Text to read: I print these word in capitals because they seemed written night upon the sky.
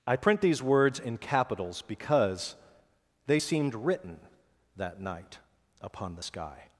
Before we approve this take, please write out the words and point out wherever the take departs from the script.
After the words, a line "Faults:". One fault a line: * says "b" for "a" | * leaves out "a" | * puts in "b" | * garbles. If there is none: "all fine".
I print these words in capitals because they seemed written that night upon the sky.
Faults:
* says "words" for "word"
* puts in "that"